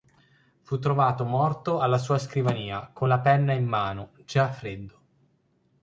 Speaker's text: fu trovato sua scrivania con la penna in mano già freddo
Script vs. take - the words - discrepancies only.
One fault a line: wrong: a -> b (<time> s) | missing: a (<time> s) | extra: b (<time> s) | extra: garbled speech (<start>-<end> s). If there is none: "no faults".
extra: morto alla (1.2 s)